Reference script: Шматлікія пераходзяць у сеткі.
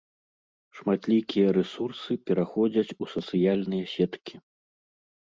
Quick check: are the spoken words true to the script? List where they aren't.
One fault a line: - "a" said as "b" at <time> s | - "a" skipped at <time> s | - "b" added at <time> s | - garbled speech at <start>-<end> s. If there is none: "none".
- "рэсурсы" added at 1.6 s
- "сацыяльныя" added at 3.2 s